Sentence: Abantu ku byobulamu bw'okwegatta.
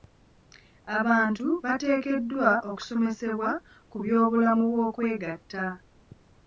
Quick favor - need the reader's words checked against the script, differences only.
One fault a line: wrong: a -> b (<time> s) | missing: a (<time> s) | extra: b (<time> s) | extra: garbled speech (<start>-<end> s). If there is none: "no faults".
extra: bateekeddwa okusomesebwa (1.6 s)